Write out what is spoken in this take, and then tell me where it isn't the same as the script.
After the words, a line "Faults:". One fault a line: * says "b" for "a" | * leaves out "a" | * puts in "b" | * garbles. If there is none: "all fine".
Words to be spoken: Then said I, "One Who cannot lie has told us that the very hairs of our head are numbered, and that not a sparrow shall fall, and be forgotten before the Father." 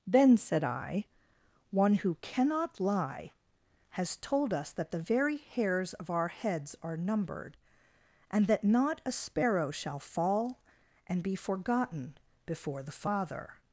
Then said I, "One Who cannot lie has told us that the very hairs of our heads are numbered, and that not a sparrow shall fall, and be forgotten before the Father."
Faults:
* says "heads" for "head"